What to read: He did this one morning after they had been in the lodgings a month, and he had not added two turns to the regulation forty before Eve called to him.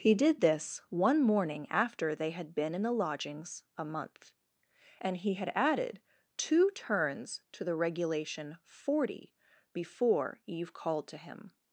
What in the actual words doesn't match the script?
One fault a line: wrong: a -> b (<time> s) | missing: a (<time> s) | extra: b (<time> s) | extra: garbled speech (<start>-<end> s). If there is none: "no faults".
missing: not (5.5 s)